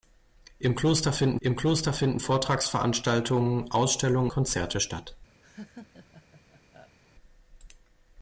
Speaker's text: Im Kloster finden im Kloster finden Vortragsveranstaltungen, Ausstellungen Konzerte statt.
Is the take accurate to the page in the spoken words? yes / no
yes